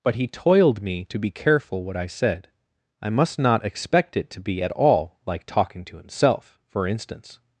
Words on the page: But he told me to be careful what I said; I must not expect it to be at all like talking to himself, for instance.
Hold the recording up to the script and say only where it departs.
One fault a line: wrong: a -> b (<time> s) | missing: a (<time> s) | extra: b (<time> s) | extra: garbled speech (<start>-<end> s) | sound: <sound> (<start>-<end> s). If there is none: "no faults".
wrong: told -> toiled (0.3 s)